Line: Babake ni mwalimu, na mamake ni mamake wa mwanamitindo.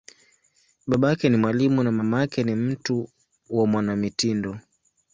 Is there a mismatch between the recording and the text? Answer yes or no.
yes